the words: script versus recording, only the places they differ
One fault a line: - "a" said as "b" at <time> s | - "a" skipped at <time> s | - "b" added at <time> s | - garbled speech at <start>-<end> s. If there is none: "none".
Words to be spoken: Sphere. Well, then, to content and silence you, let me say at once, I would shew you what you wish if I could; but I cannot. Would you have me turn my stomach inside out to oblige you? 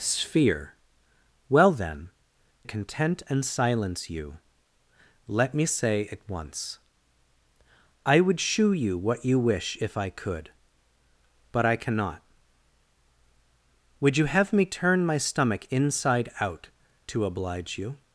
- "to" skipped at 2.1 s